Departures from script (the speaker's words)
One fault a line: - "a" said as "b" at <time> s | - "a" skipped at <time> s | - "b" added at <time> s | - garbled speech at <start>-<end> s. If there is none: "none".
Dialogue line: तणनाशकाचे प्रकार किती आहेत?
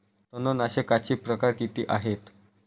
none